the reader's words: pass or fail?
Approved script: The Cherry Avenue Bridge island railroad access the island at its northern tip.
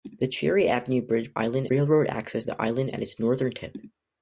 pass